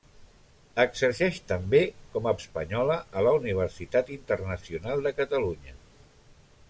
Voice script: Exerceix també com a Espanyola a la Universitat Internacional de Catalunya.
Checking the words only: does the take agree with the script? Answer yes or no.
yes